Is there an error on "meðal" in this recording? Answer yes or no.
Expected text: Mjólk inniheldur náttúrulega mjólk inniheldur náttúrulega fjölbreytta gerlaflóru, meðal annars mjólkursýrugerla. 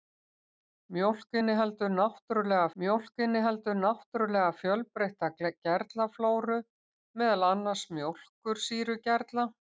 no